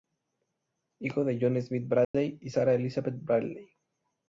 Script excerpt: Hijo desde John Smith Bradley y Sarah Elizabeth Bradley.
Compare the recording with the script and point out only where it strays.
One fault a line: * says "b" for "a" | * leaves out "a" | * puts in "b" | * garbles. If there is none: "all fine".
* says "de" for "desde"